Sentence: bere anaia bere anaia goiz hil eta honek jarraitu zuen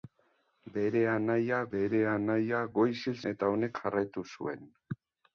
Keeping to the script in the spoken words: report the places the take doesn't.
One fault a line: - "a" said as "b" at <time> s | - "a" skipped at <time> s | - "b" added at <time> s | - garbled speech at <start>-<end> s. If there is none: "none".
none